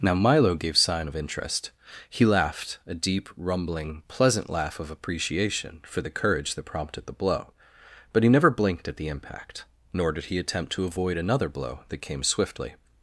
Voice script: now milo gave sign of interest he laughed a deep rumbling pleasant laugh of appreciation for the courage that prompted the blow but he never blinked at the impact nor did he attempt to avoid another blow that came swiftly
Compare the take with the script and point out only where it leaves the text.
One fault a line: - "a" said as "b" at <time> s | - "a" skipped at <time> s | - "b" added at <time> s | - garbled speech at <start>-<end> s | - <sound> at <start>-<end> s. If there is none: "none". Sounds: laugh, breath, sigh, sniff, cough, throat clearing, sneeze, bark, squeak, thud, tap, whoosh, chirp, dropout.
none